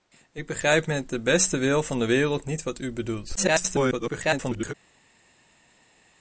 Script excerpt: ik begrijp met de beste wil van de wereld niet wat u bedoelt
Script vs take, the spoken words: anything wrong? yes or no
yes